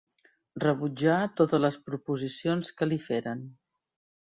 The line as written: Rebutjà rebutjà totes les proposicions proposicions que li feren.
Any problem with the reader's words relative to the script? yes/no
yes